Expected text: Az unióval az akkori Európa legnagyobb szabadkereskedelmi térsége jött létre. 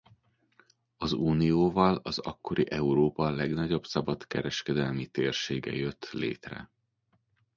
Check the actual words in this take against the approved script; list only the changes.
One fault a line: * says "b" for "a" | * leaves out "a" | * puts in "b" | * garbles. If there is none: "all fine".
all fine